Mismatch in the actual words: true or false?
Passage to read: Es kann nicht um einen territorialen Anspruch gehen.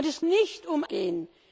true